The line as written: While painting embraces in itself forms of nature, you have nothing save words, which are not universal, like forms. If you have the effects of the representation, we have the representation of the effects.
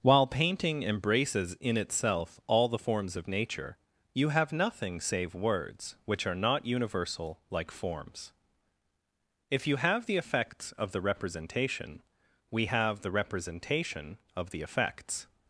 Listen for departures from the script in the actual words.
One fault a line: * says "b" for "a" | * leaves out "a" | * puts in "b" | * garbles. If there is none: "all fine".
* puts in "all the"